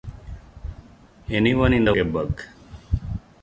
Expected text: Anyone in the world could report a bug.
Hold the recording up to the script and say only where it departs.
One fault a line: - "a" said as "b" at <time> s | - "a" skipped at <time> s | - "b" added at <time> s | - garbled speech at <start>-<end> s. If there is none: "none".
- "world could report" skipped at 1.9 s